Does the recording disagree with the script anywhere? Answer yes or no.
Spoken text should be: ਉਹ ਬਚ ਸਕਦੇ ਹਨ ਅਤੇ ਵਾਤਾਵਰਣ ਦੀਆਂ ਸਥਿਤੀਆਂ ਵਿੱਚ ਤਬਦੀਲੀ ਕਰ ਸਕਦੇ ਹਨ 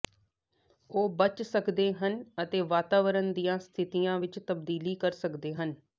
no